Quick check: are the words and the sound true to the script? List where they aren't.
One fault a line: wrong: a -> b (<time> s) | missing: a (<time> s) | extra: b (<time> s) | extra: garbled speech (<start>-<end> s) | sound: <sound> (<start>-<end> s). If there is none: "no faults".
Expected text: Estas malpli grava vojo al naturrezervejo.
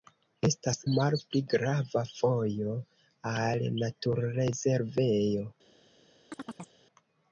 sound: chirp (6.3-6.7 s)